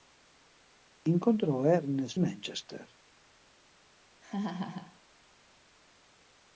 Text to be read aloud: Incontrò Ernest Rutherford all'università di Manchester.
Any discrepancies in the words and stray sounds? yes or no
yes